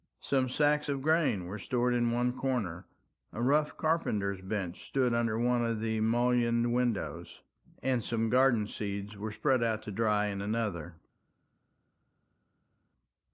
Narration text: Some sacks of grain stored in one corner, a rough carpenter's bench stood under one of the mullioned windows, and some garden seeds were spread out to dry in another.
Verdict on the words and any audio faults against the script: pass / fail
fail